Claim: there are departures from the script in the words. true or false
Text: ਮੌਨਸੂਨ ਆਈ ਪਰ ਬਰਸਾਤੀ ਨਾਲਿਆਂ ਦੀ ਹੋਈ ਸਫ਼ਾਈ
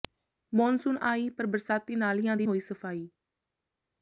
false